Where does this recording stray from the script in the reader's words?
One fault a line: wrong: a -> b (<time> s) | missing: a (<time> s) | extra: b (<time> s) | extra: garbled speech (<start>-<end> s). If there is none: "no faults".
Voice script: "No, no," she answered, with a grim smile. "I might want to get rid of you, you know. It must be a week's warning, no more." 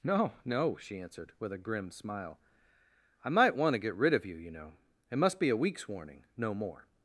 no faults